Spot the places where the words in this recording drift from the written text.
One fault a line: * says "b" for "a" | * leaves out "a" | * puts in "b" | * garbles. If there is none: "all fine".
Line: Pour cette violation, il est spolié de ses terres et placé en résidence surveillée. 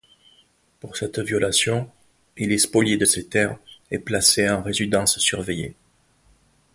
all fine